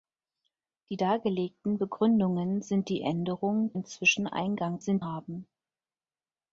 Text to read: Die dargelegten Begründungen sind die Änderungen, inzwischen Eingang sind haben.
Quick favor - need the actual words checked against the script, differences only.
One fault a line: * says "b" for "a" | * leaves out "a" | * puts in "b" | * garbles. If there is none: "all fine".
all fine